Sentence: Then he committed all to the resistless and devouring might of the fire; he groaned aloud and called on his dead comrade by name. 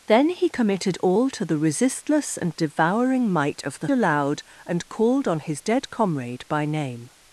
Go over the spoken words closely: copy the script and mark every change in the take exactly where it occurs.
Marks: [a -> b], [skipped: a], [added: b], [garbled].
Then he committed all to the resistless and devouring might of the [skipped: fire; he groaned] aloud and called on his dead comrade by name.